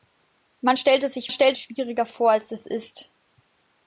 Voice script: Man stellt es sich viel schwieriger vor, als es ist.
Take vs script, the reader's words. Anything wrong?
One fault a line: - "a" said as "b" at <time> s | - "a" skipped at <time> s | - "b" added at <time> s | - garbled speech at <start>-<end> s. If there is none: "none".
- "viel" said as "stellt" at 1.3 s